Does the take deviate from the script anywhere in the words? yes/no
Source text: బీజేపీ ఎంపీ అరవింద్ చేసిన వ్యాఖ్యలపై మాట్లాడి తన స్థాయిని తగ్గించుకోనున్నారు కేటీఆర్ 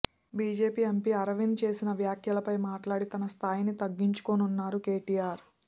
no